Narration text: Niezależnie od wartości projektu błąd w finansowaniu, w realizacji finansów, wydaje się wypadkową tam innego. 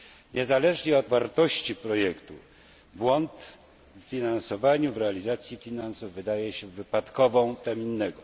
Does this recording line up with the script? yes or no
yes